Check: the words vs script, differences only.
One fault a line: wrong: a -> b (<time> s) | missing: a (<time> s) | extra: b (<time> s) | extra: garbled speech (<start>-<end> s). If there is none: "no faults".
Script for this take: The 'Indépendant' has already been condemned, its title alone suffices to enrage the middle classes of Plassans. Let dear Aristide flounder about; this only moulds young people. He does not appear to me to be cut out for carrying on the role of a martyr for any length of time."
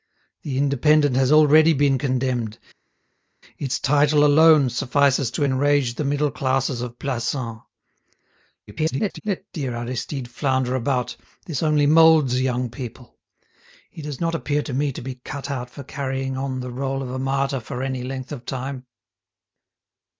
extra: garbled speech (8.7-9.2 s)